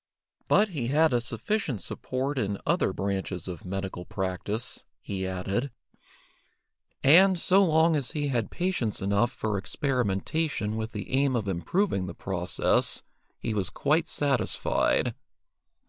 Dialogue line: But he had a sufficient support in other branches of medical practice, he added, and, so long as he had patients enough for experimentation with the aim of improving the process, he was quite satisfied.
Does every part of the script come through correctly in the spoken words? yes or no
yes